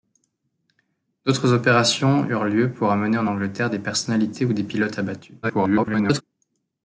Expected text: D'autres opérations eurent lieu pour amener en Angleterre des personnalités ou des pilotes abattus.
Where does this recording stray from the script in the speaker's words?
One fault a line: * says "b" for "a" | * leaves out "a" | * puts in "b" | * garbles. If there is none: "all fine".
* garbles